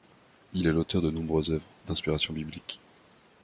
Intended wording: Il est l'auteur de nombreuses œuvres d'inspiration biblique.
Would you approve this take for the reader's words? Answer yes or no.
yes